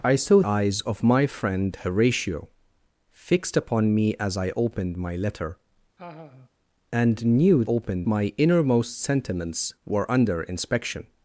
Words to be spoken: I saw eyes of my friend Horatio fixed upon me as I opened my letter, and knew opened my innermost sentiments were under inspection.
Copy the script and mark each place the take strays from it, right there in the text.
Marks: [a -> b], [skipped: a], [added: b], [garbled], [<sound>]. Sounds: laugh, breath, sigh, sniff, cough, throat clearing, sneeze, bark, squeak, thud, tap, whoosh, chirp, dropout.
I saw eyes of my friend Horatio fixed upon me as I opened my letter, [laugh] and knew opened my innermost sentiments were under inspection.